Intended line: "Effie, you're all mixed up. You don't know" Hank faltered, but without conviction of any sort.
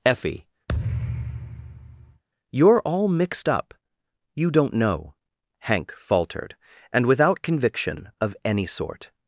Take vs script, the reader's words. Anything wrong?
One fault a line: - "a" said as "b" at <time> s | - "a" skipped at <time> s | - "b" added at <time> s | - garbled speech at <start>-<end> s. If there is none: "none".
- "but" said as "and" at 6.9 s